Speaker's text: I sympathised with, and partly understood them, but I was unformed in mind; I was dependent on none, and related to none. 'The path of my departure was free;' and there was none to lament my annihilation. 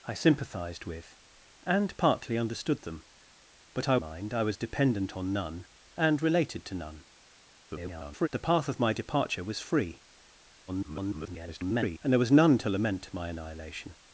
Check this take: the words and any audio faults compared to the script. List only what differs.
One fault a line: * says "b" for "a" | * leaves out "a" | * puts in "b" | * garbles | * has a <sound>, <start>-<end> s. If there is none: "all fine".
* leaves out "was unformed in"
* garbles
* garbles